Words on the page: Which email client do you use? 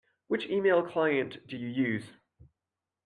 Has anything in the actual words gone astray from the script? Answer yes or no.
no